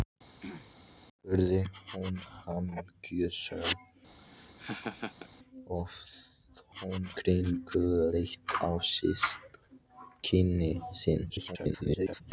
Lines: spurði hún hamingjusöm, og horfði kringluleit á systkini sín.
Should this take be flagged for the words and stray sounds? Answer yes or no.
yes